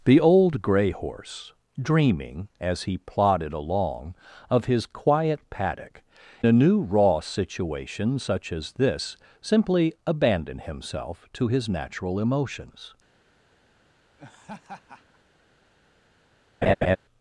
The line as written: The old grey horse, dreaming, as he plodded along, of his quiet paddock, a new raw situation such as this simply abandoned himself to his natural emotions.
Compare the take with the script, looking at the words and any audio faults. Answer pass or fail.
fail